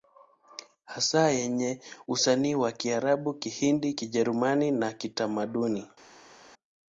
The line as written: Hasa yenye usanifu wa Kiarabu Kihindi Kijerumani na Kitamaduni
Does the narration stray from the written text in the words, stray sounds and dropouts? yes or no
no